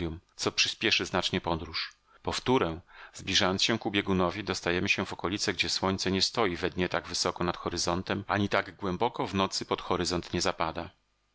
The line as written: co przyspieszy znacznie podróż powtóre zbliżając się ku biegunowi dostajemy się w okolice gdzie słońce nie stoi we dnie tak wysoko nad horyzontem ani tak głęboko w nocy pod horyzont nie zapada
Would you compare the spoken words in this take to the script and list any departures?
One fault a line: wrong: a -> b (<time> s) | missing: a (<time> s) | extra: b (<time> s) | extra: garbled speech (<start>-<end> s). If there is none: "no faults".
no faults